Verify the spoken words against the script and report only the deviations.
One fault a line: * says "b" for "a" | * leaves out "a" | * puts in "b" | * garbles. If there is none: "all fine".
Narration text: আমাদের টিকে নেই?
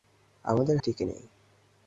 all fine